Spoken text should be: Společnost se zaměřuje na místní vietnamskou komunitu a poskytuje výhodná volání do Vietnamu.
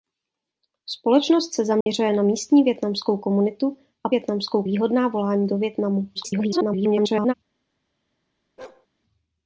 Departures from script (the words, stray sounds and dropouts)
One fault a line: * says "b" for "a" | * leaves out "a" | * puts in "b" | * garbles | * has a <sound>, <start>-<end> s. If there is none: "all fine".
* has a dropout, 1.8-1.9 s
* says "vietnamskou" for "poskytuje"
* garbles
* has a bark, 8.6-8.9 s